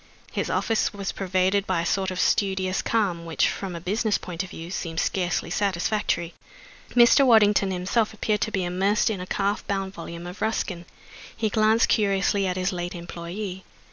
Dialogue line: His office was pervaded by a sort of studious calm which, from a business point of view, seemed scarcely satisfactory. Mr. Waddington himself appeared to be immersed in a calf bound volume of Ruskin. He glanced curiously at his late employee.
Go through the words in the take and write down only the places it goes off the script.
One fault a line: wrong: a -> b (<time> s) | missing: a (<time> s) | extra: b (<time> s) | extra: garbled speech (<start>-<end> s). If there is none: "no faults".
no faults